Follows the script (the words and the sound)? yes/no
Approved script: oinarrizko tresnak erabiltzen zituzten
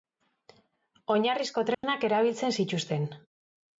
no